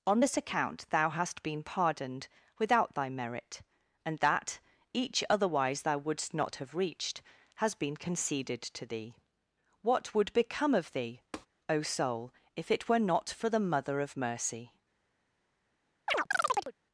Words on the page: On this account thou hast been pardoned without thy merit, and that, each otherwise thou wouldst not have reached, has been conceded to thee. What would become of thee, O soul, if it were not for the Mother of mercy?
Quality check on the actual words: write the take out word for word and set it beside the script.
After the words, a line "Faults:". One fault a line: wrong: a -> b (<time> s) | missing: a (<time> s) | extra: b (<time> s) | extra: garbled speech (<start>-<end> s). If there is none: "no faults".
On this account thou hast been pardoned without thy merit, and that, each otherwise thou wouldst not have reached, has been conceded to thee. What would become of thee, O soul, if it were not for the Mother of mercy?
Faults:
no faults